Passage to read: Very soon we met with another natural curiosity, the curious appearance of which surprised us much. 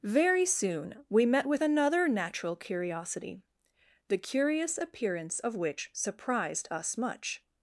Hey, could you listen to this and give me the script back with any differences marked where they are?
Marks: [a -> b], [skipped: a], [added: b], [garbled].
Very soon we met with another natural curiosity, the curious appearance of which surprised us much.